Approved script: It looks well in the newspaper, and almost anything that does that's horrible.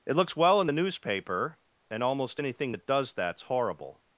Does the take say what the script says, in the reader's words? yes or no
yes